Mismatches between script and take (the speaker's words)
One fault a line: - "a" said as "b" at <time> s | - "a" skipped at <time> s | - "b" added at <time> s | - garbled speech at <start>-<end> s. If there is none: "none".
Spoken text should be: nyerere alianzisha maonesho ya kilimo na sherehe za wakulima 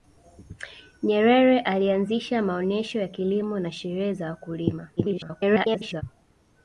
- garbled speech at 5.0-6.0 s